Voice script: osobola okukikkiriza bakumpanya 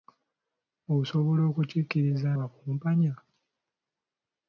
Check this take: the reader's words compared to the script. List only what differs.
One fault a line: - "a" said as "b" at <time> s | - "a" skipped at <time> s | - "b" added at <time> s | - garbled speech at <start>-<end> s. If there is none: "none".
none